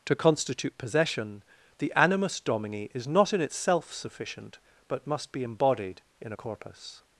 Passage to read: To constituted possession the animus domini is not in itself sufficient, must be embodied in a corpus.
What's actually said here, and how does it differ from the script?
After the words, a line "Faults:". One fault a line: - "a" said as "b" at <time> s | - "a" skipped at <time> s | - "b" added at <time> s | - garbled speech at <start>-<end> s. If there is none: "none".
To constitute possession the animus domini is not in itself sufficient, but must be embodied in a corpus.
Faults:
- "constituted" said as "constitute" at 0.1 s
- "but" added at 4.9 s